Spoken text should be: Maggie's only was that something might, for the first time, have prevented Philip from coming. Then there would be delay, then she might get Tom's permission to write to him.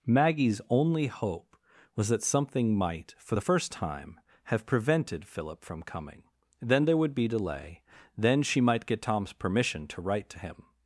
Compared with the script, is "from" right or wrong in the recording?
right